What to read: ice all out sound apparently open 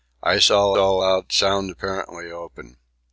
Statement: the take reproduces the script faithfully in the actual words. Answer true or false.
false